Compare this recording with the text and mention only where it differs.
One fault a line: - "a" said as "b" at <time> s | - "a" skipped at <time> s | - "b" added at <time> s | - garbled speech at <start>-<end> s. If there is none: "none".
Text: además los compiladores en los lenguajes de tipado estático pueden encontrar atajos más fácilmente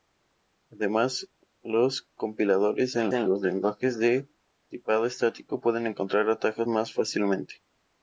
- "en" added at 3.1 s